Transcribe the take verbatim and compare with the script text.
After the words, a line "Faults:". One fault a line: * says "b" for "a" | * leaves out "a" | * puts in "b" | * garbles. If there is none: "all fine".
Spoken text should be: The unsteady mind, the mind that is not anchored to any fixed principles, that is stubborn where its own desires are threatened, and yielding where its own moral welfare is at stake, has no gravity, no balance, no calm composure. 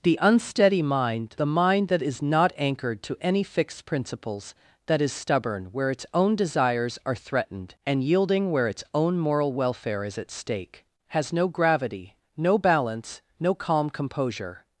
The unsteady mind, the mind that is not anchored to any fixed principles, that is stubborn where its own desires are threatened, and yielding where its own moral welfare is at stake, has no gravity, no balance, no calm composure.
Faults:
all fine